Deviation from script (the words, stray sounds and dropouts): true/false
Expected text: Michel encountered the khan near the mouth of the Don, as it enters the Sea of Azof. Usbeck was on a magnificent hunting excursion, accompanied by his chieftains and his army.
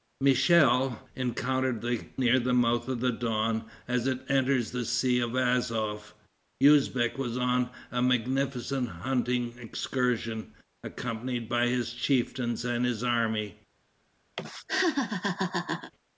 true